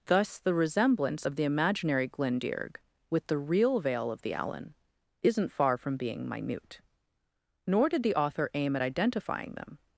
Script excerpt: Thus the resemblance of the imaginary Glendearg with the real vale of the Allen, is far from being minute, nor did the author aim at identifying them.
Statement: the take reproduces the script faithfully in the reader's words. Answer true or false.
false